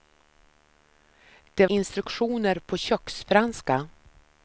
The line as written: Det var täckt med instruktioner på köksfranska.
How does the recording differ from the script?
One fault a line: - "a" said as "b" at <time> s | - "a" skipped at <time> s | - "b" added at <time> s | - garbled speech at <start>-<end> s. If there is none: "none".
- "var täckt med" skipped at 1.7 s